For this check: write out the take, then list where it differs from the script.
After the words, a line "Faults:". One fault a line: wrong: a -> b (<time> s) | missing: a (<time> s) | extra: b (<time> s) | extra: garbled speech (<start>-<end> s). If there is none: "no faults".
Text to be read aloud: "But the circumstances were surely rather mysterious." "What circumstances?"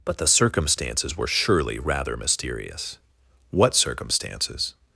"But the circumstances were surely rather mysterious." "What circumstances?"
Faults:
no faults